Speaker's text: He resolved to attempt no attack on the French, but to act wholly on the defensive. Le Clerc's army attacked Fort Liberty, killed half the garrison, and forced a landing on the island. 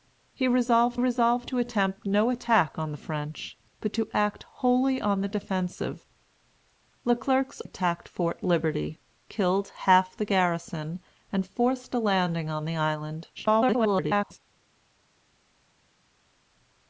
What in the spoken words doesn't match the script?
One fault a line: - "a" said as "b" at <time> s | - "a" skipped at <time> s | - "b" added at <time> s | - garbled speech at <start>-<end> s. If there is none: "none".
- "resolved" added at 1.0 s
- "army" skipped at 7.6 s
- garbled speech at 13.4-14.4 s